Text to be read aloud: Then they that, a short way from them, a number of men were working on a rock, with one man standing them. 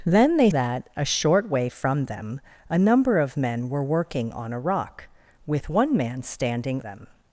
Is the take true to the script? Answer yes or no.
yes